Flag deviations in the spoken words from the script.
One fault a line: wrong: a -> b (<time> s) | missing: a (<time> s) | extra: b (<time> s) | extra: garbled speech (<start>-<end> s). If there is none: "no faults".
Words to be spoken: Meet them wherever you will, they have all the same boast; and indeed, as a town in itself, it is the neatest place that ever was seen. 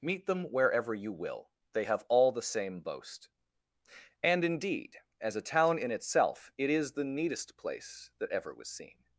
no faults